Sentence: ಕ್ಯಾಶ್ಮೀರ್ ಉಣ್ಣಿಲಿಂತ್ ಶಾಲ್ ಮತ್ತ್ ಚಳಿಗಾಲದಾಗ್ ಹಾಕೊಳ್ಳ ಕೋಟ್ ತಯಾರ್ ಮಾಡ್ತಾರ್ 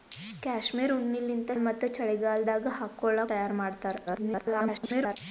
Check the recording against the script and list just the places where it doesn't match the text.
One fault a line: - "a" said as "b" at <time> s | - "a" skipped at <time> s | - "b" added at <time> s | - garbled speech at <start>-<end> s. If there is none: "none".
- "ಶಾಲ್" skipped at 1.5 s
- "ಕೋಟ್" skipped at 3.2 s
- garbled speech at 4.1-5.2 s